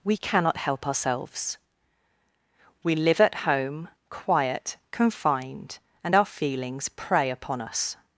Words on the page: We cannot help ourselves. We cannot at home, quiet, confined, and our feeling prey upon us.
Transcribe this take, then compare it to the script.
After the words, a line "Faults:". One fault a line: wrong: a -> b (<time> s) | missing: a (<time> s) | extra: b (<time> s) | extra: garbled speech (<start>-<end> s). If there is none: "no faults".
We cannot help ourselves. We live at home, quiet, confined, and our feelings prey upon us.
Faults:
wrong: cannot -> live (3.0 s)
wrong: feeling -> feelings (6.2 s)